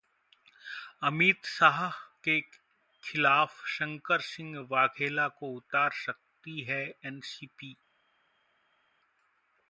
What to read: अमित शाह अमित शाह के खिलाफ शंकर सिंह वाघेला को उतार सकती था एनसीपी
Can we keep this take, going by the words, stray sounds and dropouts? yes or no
no